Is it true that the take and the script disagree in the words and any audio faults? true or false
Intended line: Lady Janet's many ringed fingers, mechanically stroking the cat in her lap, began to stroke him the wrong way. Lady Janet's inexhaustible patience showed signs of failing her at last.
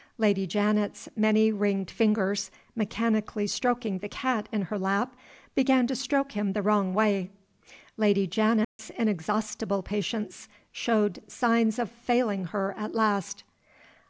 true